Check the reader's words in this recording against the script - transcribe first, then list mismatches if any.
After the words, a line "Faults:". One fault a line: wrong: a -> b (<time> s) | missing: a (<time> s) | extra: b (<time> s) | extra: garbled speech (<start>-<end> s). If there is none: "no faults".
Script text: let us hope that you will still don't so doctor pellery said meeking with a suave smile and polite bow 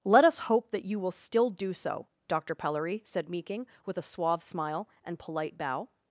let us hope that you will still do so doctor pellery said meeking with a suave smile and polite bow
Faults:
wrong: don't -> do (1.5 s)